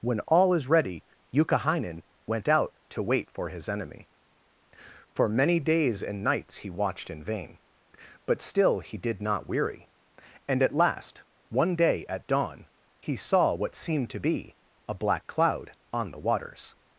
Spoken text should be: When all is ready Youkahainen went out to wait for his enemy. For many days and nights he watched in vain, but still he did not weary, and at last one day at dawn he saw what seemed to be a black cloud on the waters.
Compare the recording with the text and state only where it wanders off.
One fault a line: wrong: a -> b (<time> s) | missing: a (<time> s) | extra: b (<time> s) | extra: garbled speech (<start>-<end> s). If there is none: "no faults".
no faults